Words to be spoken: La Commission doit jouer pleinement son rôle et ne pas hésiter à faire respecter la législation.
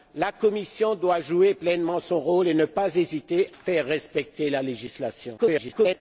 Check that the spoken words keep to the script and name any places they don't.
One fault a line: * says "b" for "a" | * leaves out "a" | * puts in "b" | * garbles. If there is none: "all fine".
* leaves out "à"
* garbles